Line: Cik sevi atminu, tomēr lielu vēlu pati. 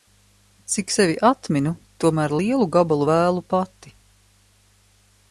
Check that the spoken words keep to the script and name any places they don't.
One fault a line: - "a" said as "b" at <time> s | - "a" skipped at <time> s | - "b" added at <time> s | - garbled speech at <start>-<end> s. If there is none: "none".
- "gabalu" added at 2.8 s